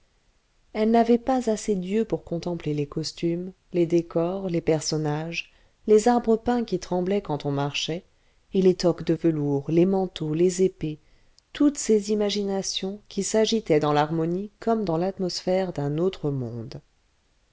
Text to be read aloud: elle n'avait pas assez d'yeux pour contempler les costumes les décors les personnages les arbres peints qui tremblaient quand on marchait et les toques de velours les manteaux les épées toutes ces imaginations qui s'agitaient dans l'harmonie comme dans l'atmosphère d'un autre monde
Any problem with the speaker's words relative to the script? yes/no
no